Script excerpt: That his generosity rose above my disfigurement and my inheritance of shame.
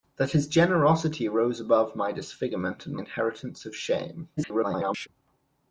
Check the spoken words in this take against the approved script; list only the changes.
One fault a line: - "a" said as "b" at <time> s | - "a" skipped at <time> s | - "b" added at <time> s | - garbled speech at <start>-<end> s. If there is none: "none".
- "my" skipped at 3.0 s
- garbled speech at 4.4-5.1 s